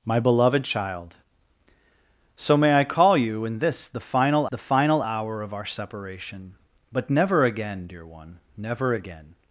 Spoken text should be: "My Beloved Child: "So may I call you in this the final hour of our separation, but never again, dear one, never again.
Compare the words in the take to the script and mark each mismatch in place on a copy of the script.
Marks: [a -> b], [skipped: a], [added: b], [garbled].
"My Beloved Child: "So may I call you in this the final [added: the final] hour of our separation, but never again, dear one, never again.